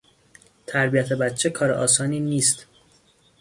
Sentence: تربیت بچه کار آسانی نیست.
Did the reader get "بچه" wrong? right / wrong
right